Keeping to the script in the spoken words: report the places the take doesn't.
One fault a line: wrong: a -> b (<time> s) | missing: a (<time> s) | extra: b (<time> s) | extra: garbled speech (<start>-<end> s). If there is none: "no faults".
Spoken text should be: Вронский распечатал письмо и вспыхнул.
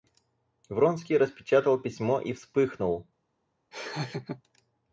no faults